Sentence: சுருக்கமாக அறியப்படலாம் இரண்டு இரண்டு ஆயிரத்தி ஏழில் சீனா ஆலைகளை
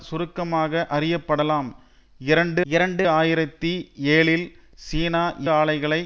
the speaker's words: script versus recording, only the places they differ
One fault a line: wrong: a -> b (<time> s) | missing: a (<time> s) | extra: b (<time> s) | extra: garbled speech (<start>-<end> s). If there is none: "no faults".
no faults